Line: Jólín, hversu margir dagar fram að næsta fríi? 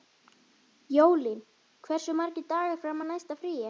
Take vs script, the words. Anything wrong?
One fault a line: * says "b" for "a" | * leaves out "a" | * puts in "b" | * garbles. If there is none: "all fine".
all fine